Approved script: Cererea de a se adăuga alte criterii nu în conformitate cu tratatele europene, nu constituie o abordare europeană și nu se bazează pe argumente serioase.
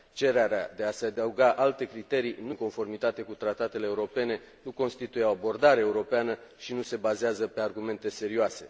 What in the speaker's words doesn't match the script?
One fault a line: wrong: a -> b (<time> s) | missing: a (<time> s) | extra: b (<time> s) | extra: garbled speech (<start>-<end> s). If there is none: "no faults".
no faults